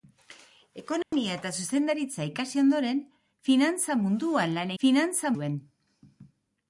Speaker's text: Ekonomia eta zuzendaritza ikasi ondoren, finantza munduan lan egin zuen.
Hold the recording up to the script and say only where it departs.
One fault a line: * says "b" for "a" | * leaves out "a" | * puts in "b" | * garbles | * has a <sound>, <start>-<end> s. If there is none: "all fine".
* has a dropout, 1.0-1.1 s
* says "finantza" for "egin"